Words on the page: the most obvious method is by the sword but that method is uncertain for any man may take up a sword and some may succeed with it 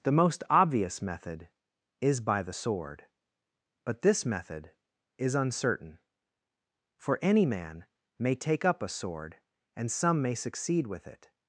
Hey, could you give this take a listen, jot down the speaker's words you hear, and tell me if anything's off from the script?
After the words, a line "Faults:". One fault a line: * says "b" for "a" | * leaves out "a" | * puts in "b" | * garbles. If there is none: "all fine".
the most obvious method is by the sword but this method is uncertain for any man may take up a sword and some may succeed with it
Faults:
* says "this" for "that"